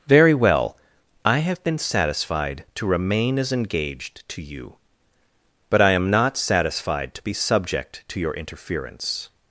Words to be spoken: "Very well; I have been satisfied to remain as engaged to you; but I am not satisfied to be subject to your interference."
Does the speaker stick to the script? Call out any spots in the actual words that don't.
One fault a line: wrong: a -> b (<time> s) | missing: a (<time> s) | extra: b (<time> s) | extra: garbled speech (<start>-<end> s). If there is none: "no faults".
no faults